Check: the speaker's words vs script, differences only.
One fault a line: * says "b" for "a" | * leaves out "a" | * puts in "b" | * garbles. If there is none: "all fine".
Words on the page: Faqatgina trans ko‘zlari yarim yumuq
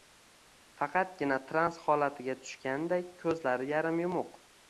* puts in "holatiga tushganday"